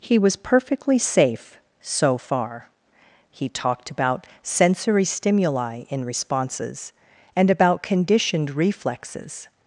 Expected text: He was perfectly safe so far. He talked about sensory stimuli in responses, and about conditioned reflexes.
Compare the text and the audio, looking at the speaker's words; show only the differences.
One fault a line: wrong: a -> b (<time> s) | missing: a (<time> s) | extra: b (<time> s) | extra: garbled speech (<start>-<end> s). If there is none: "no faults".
no faults